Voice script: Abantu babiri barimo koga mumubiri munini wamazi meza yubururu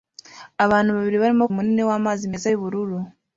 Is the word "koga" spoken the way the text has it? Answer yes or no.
no